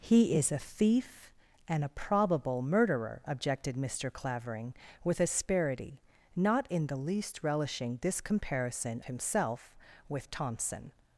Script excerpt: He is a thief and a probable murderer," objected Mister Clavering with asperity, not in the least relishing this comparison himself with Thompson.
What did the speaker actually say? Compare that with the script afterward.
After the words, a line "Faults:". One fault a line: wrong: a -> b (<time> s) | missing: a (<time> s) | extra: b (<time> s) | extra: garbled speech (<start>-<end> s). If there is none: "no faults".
He is a thief and a probable murderer," objected Mister Clavering with asperity, not in the least relishing this comparison himself with Thompson.
Faults:
no faults